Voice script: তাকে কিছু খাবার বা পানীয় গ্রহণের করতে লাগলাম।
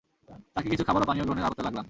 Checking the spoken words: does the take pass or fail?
pass